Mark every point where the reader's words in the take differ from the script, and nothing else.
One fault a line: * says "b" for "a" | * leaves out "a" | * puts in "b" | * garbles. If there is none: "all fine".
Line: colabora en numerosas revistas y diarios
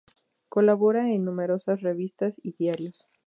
all fine